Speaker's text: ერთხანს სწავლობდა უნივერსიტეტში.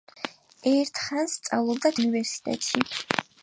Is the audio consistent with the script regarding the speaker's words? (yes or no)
yes